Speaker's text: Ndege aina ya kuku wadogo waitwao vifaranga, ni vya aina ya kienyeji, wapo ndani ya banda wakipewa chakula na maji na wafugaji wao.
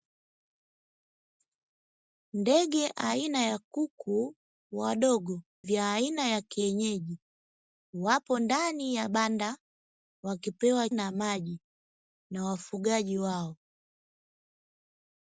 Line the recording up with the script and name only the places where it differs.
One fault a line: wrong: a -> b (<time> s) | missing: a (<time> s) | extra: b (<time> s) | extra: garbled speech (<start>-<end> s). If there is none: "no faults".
missing: waitwao vifaranga ni (5.4 s)
missing: chakula (10.9 s)